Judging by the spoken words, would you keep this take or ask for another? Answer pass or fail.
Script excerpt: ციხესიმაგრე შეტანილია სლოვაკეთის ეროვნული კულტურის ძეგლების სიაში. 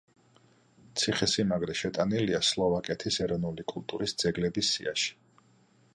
pass